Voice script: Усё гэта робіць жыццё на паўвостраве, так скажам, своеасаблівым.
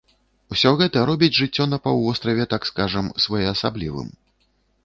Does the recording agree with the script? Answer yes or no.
yes